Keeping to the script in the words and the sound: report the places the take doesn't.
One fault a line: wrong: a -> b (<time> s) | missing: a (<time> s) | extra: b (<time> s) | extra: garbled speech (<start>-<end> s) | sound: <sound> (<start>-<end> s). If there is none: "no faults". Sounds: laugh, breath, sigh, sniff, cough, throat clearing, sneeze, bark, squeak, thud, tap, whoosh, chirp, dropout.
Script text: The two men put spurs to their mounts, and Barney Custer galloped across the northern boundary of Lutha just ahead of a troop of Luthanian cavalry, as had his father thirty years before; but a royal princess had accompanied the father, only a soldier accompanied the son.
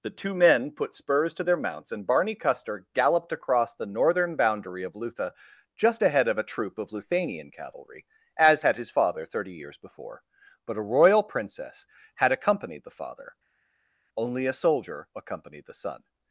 no faults